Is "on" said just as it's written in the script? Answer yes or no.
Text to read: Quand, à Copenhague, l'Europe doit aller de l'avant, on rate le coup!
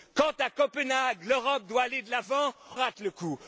no